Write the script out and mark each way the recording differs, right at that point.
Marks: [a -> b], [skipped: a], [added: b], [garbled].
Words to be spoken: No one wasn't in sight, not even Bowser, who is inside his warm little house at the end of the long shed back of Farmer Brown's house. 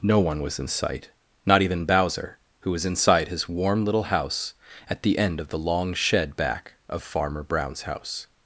No one [wasn't -> was] in sight, not even Bowser, who [is -> was] inside his warm little house at the end of the long shed back of Farmer Brown's house.